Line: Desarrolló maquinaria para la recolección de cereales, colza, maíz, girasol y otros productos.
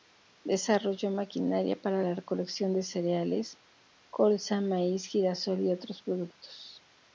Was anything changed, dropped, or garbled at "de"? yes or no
no